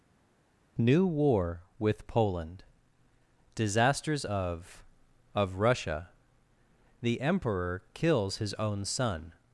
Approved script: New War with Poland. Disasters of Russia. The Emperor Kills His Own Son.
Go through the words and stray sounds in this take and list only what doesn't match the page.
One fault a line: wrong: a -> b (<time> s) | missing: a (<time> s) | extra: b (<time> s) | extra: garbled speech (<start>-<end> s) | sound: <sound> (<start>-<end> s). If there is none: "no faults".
extra: of (5.3 s)